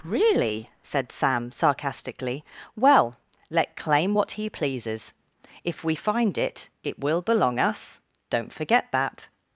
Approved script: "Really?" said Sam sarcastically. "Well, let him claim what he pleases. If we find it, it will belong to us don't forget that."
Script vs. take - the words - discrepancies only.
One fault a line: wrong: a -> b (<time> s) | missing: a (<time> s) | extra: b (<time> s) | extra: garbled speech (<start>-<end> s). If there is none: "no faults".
missing: him (3.8 s)
missing: to (7.6 s)